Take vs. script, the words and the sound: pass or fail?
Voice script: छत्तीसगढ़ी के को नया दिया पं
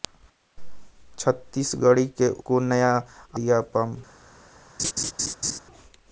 fail